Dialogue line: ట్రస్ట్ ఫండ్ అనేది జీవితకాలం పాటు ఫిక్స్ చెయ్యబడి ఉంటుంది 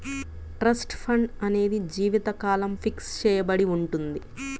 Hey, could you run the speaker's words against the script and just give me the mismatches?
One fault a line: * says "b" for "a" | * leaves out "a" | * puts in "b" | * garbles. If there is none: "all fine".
* leaves out "పాటు"